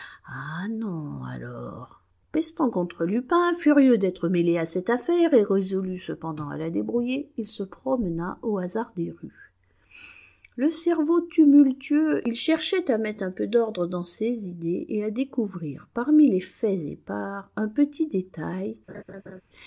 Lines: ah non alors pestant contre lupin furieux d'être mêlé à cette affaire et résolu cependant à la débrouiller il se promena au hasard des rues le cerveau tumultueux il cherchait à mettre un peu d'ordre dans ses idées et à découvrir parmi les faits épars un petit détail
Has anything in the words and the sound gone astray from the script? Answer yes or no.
yes